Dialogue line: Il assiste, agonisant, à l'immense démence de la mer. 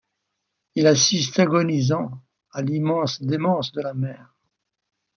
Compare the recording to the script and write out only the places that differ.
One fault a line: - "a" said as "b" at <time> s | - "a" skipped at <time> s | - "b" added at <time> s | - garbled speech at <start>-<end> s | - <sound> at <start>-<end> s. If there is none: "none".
none